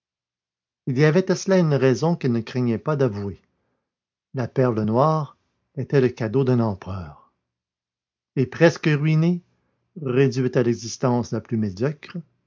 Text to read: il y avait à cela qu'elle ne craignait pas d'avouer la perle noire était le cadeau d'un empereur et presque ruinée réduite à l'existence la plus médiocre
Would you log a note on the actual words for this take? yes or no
yes